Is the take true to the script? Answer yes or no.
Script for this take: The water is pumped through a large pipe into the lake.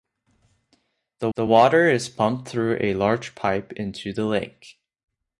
no